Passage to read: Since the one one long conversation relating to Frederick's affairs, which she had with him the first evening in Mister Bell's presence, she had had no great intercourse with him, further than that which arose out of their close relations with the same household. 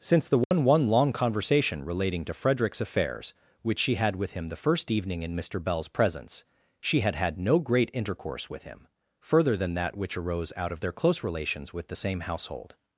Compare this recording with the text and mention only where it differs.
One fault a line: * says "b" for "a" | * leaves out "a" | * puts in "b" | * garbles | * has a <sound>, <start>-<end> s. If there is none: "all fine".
* has a dropout, 0.4-0.5 s